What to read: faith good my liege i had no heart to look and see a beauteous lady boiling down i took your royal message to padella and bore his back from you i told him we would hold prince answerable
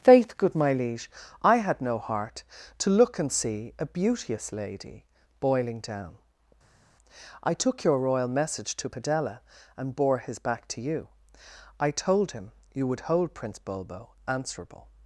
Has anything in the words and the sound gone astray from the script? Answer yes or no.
yes